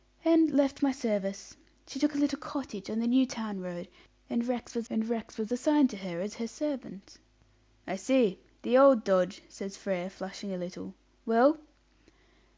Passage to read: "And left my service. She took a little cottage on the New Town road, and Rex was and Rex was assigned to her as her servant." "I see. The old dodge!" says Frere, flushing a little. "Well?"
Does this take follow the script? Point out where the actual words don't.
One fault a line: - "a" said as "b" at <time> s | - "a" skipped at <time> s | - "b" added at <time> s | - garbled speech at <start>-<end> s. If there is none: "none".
none